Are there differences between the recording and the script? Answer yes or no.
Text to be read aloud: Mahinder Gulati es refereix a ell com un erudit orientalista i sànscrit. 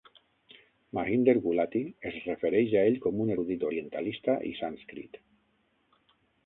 no